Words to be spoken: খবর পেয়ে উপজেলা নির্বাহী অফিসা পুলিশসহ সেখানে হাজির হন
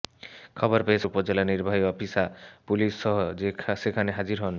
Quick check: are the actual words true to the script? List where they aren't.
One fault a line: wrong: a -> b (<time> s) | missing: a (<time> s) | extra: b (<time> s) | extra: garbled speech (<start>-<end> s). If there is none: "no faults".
no faults